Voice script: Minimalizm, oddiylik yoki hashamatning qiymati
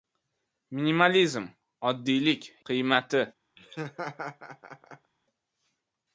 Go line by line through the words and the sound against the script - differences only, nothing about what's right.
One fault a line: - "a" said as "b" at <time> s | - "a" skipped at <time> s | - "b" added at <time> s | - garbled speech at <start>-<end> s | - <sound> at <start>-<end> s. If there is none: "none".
- "yoki hashamatning" skipped at 2.5 s
- laugh at 3.6-5.1 s